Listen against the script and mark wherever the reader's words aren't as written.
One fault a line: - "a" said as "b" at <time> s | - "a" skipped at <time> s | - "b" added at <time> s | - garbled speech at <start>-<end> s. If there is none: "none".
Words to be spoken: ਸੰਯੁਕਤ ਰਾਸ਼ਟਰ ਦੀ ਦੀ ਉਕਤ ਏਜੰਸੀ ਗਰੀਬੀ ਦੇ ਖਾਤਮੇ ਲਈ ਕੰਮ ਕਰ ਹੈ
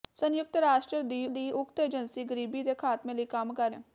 none